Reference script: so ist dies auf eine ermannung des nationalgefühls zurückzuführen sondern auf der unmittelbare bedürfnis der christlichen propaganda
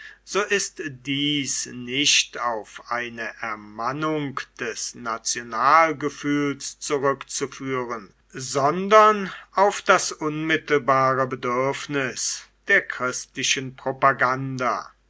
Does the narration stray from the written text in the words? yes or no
yes